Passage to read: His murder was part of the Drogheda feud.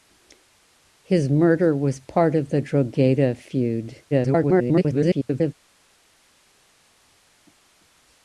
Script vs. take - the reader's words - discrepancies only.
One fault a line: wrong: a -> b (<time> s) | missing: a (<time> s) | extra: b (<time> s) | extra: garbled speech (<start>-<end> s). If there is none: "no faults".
extra: garbled speech (4.1-5.5 s)